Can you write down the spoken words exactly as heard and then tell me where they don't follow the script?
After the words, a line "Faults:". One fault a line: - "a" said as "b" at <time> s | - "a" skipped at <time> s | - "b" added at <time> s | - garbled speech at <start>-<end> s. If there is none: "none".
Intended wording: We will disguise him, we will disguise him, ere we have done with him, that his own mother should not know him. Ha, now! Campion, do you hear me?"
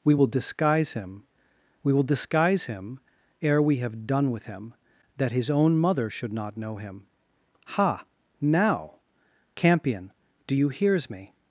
We will disguise him, we will disguise him, ere we have done with him, that his own mother should not know him. Ha, now! Campion, do you hears me?"
Faults:
- "hear" said as "hears" at 10.7 s